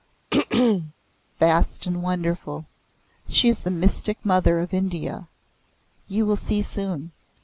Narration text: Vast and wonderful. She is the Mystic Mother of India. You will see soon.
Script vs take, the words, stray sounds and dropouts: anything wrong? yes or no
yes